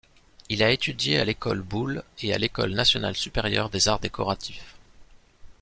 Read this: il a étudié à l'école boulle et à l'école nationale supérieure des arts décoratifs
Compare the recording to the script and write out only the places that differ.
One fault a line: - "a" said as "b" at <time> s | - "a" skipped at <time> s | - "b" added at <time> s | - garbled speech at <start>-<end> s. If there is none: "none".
none